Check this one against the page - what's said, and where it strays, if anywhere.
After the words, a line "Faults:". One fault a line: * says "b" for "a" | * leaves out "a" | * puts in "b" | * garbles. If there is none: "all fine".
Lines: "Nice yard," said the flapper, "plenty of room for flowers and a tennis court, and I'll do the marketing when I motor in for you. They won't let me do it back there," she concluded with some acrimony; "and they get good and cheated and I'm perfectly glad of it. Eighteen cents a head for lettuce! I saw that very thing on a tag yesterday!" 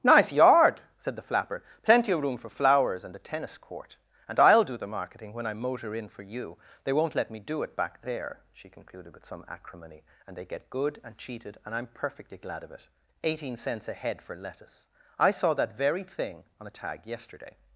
"Nice yard," said the flapper, "plenty of room for flowers and a tennis court, and I'll do the marketing when I motor in for you. They won't let me do it back there," she concluded with some acrimony; "and they get good and cheated and I'm perfectly glad of it. Eighteen cents a head for lettuce! I saw that very thing on a tag yesterday!"
Faults:
all fine